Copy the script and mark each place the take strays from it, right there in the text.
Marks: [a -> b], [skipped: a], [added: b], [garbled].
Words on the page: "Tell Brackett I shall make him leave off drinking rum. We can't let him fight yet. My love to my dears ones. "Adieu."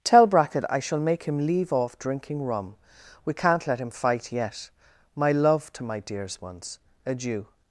"Tell Brackett I shall make him leave off drinking rum. We can't let him fight yet. My love to my dears ones. "Adieu."